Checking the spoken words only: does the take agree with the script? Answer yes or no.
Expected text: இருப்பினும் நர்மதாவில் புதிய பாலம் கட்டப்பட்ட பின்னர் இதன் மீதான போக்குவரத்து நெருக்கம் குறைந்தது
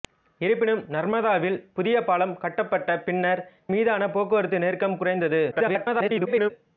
no